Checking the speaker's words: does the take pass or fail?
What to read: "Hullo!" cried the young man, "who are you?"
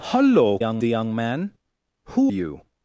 fail